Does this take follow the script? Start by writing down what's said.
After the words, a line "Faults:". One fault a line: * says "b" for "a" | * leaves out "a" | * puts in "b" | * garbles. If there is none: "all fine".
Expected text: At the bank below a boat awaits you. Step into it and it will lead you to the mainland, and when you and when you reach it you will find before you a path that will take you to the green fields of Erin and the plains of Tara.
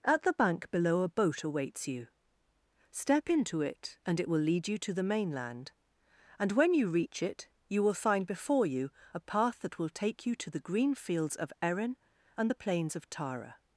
At the bank below a boat awaits you. Step into it and it will lead you to the mainland, and when you reach it you will find before you a path that will take you to the green fields of Erin and the plains of Tara.
Faults:
* leaves out "and when you"